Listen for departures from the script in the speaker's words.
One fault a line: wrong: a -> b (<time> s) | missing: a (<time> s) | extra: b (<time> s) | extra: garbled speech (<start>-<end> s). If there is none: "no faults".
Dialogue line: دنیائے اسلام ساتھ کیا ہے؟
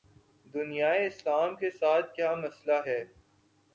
extra: کے (1.6 s)
extra: مسئلہ (2.4 s)